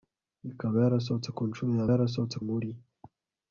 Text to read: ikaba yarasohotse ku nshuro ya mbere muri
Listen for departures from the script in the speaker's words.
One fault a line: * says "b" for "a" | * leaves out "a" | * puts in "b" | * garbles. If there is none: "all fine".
* says "yarasohotse" for "mbere"